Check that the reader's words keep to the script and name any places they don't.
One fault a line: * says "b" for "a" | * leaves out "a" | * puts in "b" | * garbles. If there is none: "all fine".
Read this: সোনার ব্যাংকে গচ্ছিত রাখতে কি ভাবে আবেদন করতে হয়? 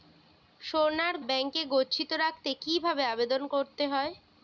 all fine